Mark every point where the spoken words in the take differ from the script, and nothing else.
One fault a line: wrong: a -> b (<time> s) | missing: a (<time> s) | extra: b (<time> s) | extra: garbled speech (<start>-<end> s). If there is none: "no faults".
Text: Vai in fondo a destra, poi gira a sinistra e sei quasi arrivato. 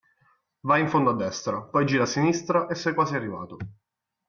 no faults